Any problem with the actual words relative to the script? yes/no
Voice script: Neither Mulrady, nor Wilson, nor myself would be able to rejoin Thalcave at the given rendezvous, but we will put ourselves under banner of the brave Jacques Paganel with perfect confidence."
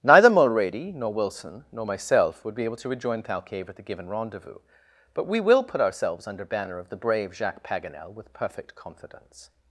no